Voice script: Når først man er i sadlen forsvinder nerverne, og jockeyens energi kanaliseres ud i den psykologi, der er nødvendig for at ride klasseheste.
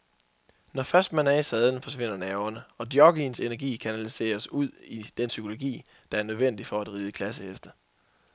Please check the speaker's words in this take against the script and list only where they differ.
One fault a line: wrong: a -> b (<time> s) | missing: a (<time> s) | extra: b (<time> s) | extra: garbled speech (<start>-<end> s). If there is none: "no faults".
no faults